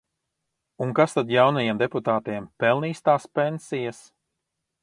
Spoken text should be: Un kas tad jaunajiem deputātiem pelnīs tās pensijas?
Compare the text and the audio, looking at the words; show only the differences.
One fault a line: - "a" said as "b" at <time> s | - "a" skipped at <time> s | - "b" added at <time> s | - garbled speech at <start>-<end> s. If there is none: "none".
none